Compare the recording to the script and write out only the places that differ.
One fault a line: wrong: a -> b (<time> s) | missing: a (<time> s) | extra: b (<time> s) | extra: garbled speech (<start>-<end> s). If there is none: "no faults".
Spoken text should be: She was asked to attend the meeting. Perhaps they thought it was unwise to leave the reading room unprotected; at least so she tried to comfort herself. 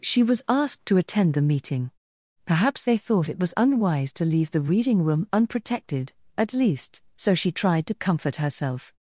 no faults